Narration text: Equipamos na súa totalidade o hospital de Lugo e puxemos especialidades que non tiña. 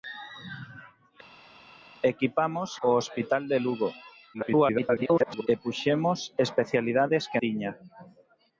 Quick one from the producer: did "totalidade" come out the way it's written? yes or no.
no